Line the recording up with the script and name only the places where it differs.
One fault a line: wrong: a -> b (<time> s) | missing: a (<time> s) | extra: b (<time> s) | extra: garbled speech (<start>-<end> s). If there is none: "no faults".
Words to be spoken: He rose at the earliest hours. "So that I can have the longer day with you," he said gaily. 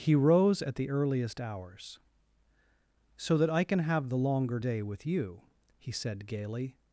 no faults